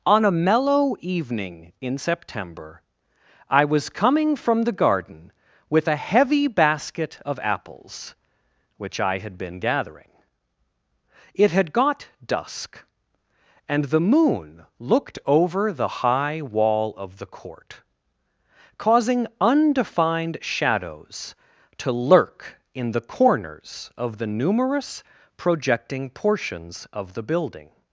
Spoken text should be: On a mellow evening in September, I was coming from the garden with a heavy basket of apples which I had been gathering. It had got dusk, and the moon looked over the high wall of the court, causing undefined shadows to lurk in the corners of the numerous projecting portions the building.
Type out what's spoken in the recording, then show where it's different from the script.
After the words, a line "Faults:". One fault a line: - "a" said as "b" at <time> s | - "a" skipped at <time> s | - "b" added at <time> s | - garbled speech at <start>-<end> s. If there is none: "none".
On a mellow evening in September, I was coming from the garden with a heavy basket of apples which I had been gathering. It had got dusk, and the moon looked over the high wall of the court, causing undefined shadows to lurk in the corners of the numerous projecting portions of the building.
Faults:
- "of" added at 26.9 s